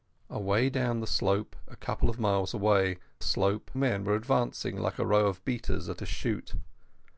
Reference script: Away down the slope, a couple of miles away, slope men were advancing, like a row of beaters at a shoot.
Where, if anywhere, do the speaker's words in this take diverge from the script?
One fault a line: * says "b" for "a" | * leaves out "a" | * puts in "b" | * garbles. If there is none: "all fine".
all fine